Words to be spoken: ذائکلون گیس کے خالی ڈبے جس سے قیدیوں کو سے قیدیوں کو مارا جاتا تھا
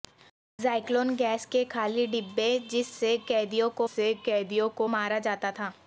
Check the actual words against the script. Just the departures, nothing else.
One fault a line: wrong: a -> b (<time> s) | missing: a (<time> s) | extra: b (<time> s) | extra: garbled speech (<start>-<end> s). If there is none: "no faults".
no faults